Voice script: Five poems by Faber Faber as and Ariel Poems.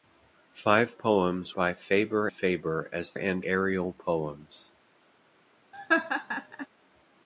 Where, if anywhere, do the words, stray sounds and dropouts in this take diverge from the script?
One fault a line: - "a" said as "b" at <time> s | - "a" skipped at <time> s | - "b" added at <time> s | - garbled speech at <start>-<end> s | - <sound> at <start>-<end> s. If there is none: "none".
- laugh at 5.7-6.7 s